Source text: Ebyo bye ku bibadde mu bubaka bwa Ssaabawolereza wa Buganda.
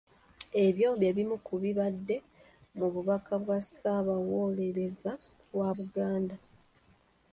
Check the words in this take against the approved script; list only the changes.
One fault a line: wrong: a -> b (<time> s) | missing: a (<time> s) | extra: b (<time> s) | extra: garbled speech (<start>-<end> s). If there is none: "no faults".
extra: bimu (1.2 s)